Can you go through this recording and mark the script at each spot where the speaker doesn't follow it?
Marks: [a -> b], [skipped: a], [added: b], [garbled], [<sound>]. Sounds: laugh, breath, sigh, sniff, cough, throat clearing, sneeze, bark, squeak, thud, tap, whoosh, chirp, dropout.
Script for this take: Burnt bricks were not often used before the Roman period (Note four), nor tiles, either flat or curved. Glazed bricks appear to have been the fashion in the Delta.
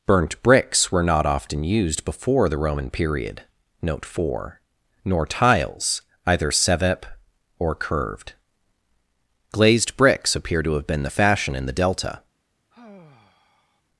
Burnt bricks were not often used before the Roman period (Note four), nor tiles, either [flat -> sevep] or curved. Glazed bricks appear to have been the fashion in the Delta. [sigh]